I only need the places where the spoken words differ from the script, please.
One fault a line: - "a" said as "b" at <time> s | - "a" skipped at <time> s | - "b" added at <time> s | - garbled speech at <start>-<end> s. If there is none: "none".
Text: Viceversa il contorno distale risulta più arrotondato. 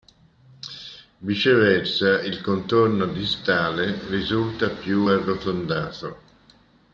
none